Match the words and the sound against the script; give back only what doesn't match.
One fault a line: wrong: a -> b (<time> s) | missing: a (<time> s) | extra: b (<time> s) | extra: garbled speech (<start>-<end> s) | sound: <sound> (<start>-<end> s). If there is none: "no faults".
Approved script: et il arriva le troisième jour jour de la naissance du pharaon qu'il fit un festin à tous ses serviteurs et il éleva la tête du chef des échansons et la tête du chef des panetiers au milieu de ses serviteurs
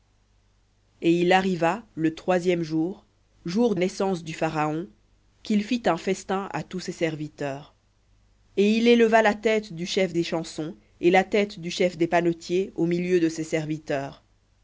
missing: de la (3.8 s)
missing: des (10.1 s)